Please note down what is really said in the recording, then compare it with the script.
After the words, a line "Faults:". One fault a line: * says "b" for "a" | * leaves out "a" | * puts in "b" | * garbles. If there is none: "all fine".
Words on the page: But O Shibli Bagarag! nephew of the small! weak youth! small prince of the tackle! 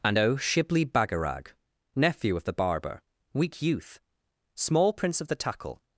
And O Shibli Bagarag! nephew of the barber! weak youth! small prince of the tackle!
Faults:
* says "And" for "But"
* says "barber" for "small"